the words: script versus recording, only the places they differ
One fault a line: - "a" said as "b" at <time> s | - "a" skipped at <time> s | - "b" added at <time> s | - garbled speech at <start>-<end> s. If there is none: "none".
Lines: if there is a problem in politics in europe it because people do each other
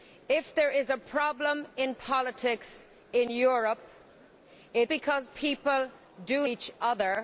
none